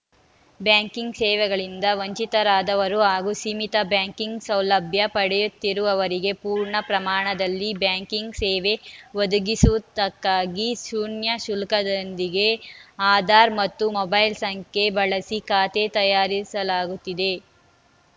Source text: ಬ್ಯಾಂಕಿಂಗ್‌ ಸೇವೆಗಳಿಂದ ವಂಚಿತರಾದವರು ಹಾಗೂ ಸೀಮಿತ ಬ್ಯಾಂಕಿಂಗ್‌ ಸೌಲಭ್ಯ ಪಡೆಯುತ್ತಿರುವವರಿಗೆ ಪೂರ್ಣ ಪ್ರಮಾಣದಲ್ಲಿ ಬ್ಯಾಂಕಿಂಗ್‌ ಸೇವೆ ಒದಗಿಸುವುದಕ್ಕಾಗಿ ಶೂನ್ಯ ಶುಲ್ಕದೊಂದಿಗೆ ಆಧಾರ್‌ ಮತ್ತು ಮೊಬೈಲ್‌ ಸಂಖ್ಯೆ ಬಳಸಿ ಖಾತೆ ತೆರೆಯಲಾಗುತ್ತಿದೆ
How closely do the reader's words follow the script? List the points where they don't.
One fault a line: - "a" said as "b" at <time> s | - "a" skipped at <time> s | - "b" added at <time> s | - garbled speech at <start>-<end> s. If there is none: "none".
none